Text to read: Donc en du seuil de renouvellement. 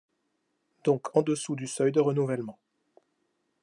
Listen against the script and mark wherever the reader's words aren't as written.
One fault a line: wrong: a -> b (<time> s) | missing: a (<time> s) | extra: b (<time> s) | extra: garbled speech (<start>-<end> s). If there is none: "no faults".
extra: dessous (1.2 s)